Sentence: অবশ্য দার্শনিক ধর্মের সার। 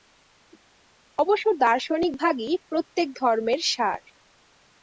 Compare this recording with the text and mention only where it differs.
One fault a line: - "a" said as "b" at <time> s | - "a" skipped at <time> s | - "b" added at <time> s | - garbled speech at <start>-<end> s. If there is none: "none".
- "ভাগই প্রত্যেক" added at 2.2 s